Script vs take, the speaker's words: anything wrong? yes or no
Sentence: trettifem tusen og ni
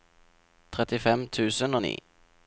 no